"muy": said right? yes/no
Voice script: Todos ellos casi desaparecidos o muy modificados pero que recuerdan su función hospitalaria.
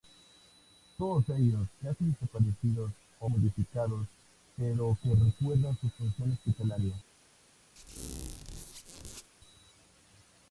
no